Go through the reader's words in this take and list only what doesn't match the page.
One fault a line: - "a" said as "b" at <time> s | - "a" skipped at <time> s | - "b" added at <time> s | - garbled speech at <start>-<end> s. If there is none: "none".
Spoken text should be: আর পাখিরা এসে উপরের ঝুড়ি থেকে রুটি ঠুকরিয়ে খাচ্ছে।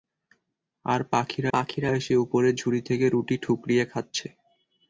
- "পাখিরা" added at 1.5 s